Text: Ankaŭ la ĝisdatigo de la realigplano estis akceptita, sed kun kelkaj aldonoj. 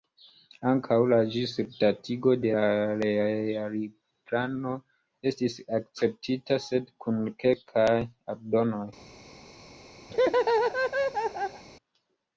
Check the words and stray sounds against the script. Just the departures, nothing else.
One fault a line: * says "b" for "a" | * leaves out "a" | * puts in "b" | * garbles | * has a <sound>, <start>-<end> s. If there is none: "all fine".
* has a laugh, 10.1-11.6 s